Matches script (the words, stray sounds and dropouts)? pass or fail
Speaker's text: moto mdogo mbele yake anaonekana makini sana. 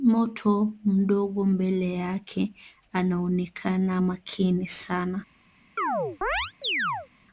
fail